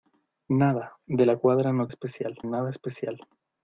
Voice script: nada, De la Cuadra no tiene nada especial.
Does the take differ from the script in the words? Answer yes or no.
yes